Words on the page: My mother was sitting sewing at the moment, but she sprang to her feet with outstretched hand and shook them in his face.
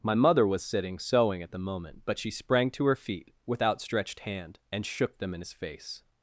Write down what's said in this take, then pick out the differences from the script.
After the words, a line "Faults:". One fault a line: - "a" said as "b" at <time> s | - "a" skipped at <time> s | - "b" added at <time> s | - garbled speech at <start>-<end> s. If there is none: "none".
My mother was sitting sewing at the moment, but she sprang to her feet with outstretched hand and shook them in his face.
Faults:
none